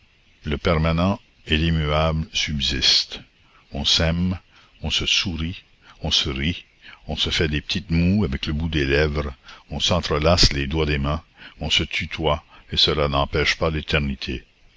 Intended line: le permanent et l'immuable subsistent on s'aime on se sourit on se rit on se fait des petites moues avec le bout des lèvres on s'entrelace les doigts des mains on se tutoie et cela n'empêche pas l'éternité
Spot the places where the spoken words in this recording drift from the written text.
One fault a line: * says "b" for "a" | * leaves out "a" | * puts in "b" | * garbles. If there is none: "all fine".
all fine